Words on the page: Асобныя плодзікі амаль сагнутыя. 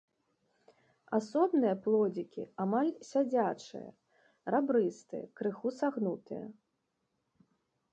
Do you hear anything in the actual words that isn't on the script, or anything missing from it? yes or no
yes